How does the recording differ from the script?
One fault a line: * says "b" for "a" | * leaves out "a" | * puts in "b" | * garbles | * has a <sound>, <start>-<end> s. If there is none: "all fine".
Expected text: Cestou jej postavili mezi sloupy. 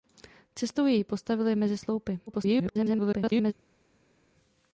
* garbles